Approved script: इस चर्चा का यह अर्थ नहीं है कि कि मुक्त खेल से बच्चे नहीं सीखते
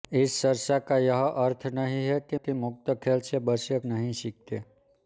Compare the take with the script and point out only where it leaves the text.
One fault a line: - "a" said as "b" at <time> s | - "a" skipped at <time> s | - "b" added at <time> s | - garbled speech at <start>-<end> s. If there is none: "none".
none